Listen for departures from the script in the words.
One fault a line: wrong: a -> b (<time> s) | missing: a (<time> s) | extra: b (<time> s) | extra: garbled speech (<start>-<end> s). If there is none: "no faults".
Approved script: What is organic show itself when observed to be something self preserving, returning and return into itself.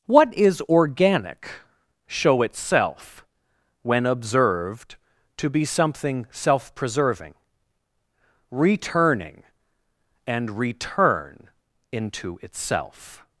no faults